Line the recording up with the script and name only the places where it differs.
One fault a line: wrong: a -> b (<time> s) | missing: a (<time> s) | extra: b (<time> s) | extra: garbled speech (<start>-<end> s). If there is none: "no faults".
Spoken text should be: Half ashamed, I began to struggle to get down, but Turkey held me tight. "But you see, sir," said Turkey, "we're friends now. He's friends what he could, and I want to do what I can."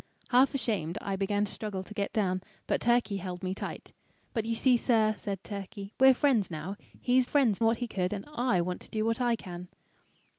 no faults